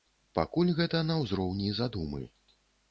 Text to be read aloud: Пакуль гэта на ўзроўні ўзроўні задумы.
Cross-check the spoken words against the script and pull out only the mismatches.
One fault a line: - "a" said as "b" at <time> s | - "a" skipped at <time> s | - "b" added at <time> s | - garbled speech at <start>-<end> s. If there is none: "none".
- "ўзроўні" skipped at 1.7 s